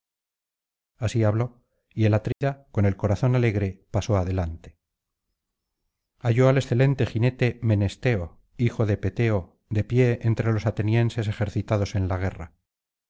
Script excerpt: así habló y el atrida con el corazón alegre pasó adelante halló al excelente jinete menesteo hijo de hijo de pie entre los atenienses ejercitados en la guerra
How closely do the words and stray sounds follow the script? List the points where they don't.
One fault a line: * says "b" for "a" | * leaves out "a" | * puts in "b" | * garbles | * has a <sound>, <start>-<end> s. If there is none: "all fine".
* has a dropout, 2.3-2.4 s
* says "peteo" for "hijo"